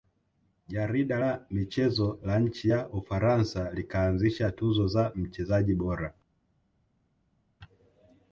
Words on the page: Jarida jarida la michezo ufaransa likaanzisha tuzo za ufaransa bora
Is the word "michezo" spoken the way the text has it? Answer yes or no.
no